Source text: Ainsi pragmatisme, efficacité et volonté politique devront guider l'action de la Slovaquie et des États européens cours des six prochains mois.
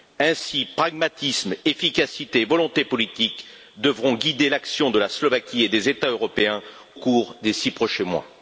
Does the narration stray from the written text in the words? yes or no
no